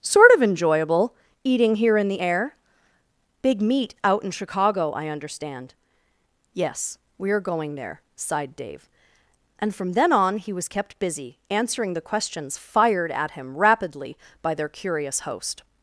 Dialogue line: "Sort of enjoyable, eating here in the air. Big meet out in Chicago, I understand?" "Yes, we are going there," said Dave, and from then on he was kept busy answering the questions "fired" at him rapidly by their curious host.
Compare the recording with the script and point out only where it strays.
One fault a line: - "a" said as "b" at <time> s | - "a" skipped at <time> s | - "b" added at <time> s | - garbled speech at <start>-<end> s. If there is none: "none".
- "said" said as "sighed" at 8.1 s